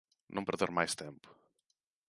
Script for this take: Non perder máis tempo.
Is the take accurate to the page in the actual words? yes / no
yes